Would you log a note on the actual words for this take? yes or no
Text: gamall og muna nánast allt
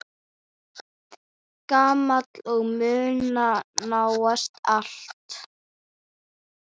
no